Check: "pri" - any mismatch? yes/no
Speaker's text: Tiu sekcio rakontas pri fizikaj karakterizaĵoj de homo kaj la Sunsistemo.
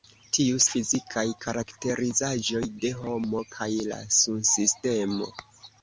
yes